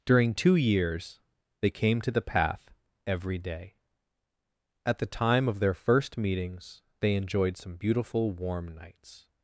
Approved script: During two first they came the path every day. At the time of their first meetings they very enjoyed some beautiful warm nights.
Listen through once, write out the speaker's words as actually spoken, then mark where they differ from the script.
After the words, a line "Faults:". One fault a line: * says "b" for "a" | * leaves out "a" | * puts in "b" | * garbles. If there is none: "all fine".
During two years they came to the path every day. At the time of their first meetings they enjoyed some beautiful warm nights.
Faults:
* says "years" for "first"
* puts in "to"
* leaves out "very"